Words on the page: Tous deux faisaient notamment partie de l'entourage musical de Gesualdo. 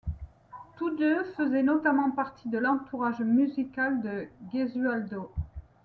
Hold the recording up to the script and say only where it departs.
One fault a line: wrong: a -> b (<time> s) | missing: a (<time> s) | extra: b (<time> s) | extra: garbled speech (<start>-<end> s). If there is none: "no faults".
no faults